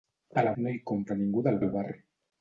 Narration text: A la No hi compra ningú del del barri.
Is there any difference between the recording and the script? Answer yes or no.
no